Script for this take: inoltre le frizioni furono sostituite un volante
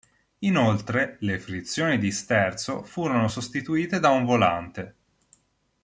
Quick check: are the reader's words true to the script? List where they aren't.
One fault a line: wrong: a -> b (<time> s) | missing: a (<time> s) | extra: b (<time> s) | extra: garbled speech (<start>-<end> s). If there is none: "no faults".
extra: di sterzo (2.0 s)
extra: da (4.0 s)